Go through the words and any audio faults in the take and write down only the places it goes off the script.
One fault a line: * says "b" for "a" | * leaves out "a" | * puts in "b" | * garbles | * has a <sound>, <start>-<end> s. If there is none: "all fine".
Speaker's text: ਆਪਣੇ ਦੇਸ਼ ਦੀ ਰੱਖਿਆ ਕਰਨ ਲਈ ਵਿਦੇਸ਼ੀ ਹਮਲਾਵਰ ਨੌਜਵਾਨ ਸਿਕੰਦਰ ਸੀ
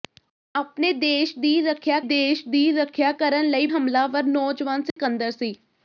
* puts in "ਦੇਸ਼ ਦੀ ਰੱਖਿਆ"
* leaves out "ਵਿਦੇਸ਼ੀ"
* has a dropout, 4.9-5.0 s